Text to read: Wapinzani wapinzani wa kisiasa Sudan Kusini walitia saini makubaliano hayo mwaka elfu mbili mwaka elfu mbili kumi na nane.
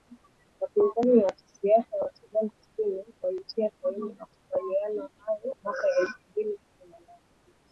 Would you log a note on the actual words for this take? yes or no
yes